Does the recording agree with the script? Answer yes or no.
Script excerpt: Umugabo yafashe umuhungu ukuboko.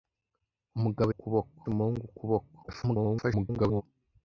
no